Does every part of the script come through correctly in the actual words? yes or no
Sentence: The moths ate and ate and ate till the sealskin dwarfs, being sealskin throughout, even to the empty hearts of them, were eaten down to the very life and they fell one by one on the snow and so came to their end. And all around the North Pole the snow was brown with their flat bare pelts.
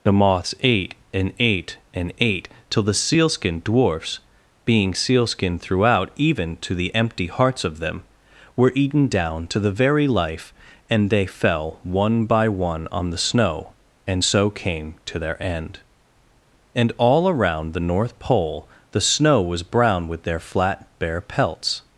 yes